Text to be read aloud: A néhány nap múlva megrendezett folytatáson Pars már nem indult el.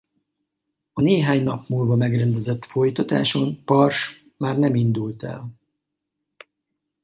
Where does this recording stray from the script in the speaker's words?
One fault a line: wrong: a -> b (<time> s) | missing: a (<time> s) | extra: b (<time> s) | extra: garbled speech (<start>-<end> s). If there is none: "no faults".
no faults